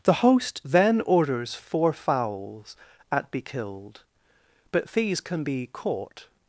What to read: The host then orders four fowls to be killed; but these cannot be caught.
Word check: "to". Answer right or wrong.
wrong